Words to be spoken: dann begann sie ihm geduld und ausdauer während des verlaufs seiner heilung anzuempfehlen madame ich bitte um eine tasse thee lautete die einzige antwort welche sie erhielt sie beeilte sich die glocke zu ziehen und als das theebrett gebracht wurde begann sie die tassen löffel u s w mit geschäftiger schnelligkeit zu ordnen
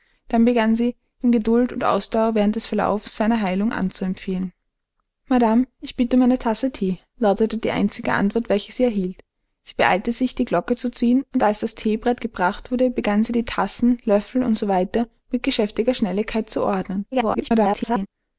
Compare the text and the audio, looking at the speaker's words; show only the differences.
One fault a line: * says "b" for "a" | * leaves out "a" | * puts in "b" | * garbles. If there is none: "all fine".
* garbles